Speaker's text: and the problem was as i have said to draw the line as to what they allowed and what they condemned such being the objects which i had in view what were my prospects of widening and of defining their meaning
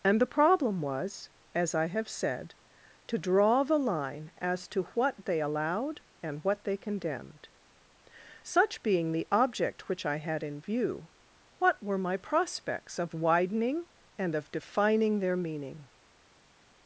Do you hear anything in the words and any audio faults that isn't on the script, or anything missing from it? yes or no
yes